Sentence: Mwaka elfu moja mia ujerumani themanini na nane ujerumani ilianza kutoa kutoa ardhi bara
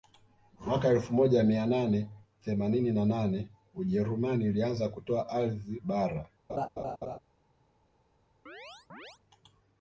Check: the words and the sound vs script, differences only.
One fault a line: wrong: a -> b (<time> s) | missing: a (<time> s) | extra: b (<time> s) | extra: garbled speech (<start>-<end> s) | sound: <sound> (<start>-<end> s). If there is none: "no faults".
wrong: ujerumani -> nane (1.6 s)
missing: kutoa (5.3 s)
sound: laugh (6.5-7.2 s)
sound: chirp (8.5-9.2 s)